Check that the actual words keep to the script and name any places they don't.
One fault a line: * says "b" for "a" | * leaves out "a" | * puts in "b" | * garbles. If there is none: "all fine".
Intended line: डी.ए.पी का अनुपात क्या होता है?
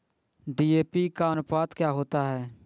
all fine